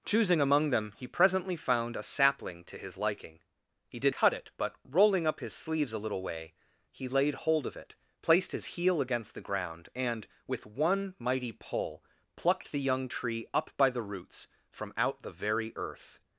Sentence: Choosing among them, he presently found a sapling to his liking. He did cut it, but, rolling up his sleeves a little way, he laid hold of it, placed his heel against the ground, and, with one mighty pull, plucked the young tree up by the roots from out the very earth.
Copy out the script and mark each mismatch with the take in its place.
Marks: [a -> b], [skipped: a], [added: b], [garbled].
Choosing among them, he presently found a sapling to his liking. He did cut it, but, rolling up his sleeves a little way, he laid hold of it, placed his heel against the ground, and, with one mighty pull, plucked the young tree up by the roots from out the very earth.